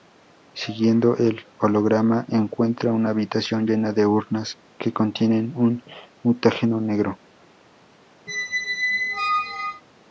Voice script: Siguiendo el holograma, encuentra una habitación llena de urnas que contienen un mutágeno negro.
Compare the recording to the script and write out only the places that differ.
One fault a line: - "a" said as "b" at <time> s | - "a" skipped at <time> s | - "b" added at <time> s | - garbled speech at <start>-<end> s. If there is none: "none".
none